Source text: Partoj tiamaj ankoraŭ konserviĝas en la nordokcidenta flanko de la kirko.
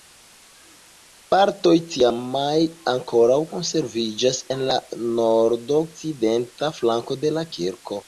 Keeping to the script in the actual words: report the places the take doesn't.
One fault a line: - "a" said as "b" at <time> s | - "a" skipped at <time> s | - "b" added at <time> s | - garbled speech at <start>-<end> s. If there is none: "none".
none